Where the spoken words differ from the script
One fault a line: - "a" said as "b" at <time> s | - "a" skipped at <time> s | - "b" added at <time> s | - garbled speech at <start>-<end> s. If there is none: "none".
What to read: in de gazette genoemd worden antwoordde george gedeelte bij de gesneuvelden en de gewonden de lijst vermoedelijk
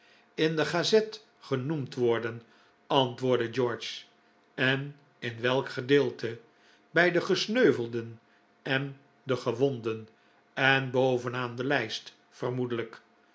- "en in welk" added at 4.5 s
- "en boven aan" added at 10.5 s